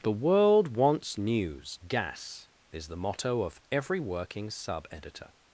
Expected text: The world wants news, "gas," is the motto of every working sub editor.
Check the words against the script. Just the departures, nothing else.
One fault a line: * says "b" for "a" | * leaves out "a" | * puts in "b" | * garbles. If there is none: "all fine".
all fine